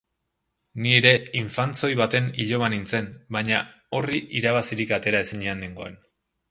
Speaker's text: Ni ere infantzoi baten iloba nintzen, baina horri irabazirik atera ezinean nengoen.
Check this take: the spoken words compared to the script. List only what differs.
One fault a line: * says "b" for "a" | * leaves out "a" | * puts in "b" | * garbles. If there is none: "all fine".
all fine